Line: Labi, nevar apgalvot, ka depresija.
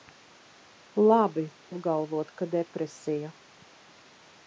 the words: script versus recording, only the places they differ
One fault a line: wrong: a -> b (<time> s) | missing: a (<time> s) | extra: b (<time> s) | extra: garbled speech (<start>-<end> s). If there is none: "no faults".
missing: nevar (1.4 s)